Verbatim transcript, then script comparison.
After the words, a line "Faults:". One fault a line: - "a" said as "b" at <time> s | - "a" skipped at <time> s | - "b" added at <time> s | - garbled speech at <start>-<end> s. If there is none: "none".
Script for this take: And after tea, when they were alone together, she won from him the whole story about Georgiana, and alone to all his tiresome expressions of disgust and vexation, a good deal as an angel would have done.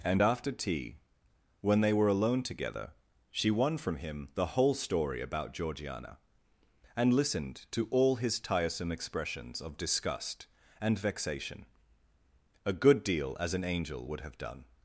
And after tea, when they were alone together, she won from him the whole story about Georgiana, and listened to all his tiresome expressions of disgust and vexation, a good deal as an angel would have done.
Faults:
- "alone" said as "listened" at 7.1 s